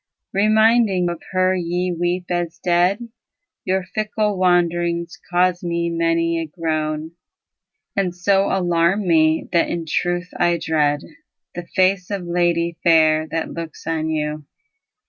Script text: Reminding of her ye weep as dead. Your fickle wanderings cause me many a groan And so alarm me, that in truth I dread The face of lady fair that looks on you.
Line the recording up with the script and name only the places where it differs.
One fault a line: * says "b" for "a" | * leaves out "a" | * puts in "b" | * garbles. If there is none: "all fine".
all fine